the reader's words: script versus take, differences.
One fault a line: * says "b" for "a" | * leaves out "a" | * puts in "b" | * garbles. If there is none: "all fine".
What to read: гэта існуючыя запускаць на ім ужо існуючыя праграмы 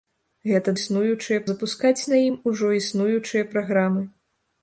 all fine